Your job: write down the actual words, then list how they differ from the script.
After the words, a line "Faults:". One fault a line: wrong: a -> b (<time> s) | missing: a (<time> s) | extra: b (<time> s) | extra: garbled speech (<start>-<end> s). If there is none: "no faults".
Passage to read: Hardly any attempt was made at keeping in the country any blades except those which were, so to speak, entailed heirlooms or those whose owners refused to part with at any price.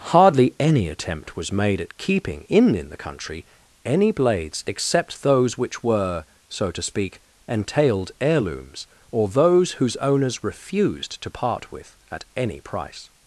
Hardly any attempt was made at keeping in in the country any blades except those which were, so to speak, entailed heirlooms or those whose owners refused to part with at any price.
Faults:
extra: in (2.8 s)